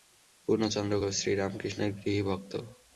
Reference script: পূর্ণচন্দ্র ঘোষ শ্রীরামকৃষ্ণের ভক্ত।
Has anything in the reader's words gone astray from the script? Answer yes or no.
yes